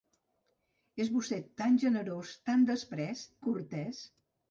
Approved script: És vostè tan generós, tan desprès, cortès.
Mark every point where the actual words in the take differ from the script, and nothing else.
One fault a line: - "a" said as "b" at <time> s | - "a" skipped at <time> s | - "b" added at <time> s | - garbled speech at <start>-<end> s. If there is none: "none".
none